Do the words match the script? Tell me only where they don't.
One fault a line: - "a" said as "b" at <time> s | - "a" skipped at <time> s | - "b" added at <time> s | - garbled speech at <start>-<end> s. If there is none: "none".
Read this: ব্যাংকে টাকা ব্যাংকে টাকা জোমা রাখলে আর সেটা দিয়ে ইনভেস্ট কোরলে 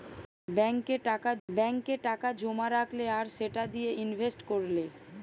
none